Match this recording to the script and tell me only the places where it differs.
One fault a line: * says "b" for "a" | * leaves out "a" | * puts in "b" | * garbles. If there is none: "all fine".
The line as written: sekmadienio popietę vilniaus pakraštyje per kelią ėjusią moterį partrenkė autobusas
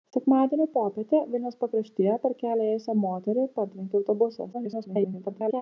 * garbles